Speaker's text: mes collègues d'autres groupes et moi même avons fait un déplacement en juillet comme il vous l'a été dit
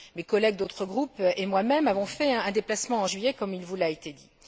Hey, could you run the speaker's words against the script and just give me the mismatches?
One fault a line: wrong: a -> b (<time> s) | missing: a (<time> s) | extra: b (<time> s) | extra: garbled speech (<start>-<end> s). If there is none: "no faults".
no faults